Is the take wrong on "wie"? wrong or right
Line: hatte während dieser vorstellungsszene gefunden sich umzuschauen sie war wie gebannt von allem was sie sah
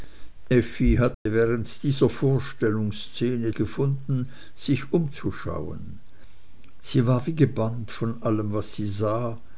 right